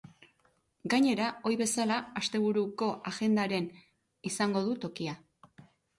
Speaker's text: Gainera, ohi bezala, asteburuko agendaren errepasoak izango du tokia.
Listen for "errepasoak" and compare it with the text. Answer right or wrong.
wrong